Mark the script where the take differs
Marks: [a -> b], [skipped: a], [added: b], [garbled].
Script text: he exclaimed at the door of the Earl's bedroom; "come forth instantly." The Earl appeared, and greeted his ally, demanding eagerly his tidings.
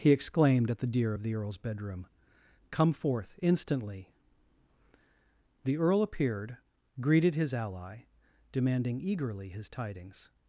he exclaimed at the [door -> deer] of the Earl's bedroom; "come forth instantly." The Earl appeared, [skipped: and] greeted his ally, demanding eagerly his tidings.